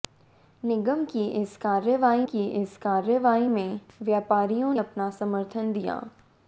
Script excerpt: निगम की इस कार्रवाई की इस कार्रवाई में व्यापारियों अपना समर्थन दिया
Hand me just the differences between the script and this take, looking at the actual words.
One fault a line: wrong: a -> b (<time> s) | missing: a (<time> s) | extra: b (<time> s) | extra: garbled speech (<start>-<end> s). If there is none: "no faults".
no faults